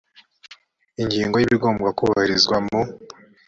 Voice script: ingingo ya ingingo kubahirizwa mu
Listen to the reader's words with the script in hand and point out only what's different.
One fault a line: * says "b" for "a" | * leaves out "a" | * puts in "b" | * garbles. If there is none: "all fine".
* says "ibigomba" for "ingingo"